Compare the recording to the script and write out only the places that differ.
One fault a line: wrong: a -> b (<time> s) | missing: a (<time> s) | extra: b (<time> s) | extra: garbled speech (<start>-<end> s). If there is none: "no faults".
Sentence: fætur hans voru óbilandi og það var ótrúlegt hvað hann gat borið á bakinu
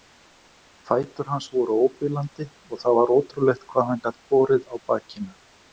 no faults